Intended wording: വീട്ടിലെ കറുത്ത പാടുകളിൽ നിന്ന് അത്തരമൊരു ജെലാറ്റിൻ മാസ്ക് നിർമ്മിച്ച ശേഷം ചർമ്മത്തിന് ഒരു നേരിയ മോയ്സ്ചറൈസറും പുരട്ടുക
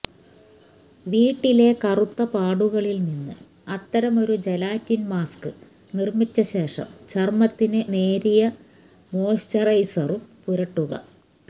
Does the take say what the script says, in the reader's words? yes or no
no